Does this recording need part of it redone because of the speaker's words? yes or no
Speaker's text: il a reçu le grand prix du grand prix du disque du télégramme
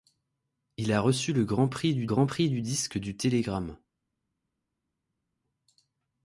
no